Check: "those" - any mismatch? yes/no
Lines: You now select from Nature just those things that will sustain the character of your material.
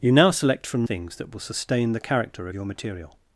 yes